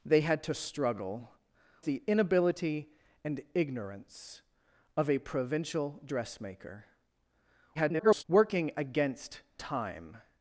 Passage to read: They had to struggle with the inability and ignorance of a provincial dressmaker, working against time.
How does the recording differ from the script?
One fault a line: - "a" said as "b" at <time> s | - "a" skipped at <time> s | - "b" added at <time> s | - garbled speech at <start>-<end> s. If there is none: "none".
- "with" skipped at 1.3 s
- garbled speech at 7.7-8.2 s